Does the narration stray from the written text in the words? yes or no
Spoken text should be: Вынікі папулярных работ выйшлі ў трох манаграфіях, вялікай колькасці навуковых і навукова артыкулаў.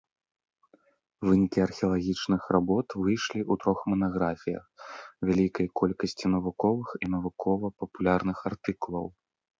yes